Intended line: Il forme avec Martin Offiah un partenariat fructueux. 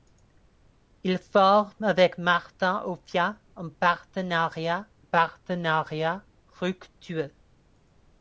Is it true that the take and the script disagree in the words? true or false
true